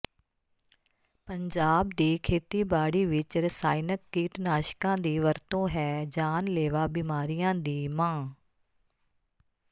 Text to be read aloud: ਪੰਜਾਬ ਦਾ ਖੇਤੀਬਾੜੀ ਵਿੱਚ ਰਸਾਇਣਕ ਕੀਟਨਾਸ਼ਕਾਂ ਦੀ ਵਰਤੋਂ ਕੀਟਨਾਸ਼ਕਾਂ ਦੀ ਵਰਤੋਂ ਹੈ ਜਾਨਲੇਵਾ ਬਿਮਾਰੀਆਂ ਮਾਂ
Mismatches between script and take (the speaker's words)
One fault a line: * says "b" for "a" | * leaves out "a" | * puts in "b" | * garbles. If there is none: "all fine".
* says "ਦੀ" for "ਦਾ"
* leaves out "ਕੀਟਨਾਸ਼ਕਾਂ ਦੀ ਵਰਤੋਂ"
* puts in "ਦੀ"